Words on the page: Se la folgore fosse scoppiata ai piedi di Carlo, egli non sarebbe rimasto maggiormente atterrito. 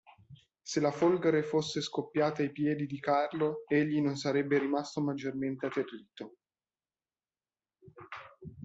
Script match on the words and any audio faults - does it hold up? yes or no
yes